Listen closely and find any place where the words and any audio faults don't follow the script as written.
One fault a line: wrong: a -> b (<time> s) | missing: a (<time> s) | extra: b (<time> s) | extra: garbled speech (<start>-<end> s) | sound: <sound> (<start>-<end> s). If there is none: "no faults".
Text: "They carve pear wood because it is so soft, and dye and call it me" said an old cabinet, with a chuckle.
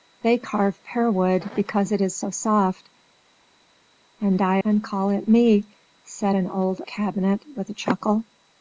no faults